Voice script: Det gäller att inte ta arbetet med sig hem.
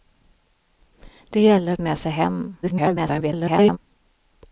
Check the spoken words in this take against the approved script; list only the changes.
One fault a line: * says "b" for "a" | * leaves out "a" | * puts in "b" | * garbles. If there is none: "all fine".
* leaves out "inte ta arbetet"
* garbles